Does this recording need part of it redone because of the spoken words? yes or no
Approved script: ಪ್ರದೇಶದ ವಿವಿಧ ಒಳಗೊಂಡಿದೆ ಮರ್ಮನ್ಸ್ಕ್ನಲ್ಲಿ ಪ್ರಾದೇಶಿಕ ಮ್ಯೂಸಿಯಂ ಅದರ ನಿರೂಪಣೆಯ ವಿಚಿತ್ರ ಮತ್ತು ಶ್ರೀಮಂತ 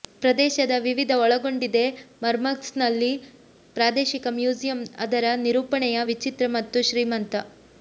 no